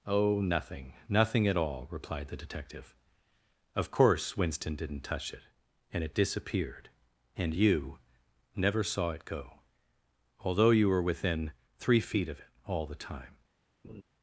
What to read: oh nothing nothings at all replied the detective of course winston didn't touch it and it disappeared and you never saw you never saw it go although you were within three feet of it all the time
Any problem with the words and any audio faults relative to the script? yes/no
yes